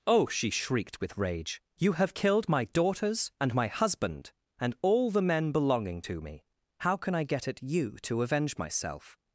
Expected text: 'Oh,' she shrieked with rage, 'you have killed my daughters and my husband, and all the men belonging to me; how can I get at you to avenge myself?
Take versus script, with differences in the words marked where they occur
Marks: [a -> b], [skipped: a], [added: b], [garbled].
'Oh,' she shrieked with rage, 'you have killed my daughters and my husband, and all the men belonging to me; how can I get at you to avenge myself?